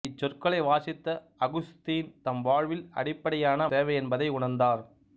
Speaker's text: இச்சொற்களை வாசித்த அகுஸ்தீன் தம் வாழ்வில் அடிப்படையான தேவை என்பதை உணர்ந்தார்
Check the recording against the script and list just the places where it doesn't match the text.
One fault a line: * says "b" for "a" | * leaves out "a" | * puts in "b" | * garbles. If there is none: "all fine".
all fine